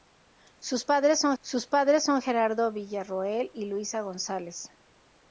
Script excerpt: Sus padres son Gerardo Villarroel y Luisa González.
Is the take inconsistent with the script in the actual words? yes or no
yes